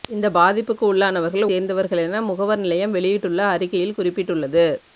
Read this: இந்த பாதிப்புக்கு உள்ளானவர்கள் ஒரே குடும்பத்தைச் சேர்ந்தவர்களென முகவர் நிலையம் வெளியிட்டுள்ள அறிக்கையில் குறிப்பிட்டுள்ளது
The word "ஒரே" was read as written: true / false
false